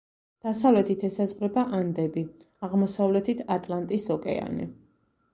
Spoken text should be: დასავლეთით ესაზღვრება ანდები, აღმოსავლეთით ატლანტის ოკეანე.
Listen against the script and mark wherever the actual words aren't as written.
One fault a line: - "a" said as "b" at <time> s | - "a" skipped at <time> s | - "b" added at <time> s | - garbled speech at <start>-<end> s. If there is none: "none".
none